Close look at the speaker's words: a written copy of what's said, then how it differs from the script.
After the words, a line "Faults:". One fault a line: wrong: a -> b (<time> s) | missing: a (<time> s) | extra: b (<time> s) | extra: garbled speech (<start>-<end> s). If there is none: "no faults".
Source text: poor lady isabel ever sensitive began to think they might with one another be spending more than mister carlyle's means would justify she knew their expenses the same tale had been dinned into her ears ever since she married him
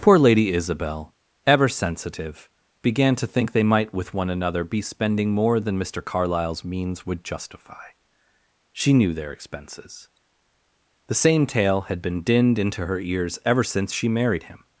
poor lady isabel ever sensitive began to think they might with one another be spending more than mister carlyle's means would justify she knew their expenses the same tale had been dinned into her ears ever since she married him
Faults:
no faults